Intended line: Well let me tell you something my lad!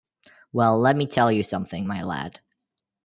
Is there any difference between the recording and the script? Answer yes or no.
no